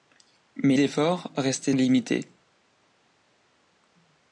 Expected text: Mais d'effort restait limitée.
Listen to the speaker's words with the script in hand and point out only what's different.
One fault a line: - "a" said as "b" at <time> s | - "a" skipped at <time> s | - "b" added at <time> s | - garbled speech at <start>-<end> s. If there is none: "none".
none